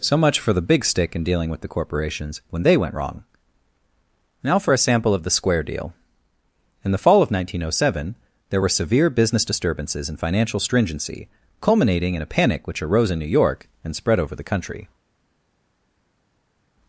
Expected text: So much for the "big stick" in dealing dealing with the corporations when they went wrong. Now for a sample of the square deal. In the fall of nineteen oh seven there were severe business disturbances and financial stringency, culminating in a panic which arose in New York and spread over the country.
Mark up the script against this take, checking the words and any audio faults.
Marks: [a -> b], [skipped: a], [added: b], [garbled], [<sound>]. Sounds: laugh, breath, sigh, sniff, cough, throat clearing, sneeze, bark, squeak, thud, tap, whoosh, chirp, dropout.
So much for the "big stick" in dealing [skipped: dealing] with the corporations when they went wrong. Now for a sample of the square deal. In the fall of nineteen oh seven there were severe business disturbances and financial stringency, culminating in a panic which arose in New York and spread over the country.